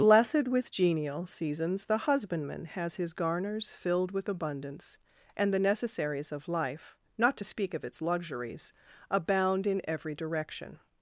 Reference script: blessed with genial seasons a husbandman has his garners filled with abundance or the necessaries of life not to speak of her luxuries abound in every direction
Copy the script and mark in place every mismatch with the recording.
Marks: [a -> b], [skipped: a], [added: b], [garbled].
blessed with genial seasons [a -> the] husbandman has his garners filled with abundance [or -> and] the necessaries of life not to speak of [her -> its] luxuries abound in every direction